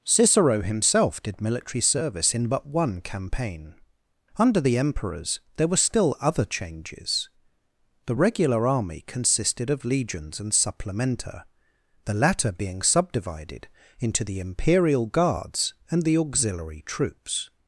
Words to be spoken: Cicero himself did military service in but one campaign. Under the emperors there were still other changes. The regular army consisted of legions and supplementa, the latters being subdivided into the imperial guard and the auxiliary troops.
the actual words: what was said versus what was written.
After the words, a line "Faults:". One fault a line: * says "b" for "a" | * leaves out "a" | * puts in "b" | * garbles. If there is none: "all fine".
Cicero himself did military service in but one campaign. Under the emperors there were still other changes. The regular army consisted of legions and supplementa, the latter being subdivided into the imperial guards and the auxiliary troops.
Faults:
* says "latter" for "latters"
* says "guards" for "guard"